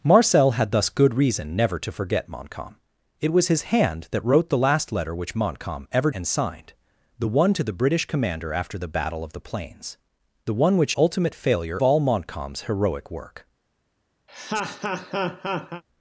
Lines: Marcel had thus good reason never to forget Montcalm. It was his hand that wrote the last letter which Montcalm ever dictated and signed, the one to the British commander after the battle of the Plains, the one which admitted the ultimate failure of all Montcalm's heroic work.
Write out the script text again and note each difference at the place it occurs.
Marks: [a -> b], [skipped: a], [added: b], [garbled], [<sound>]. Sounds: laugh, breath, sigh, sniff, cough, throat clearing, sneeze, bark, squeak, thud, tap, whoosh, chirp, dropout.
Marcel had thus good reason never to forget Montcalm. It was his hand that wrote the last letter which Montcalm ever [skipped: dictated] and signed, the one to the British commander after the battle of the Plains, the one which [skipped: admitted the] ultimate failure [skipped: of] all Montcalm's heroic work. [laugh]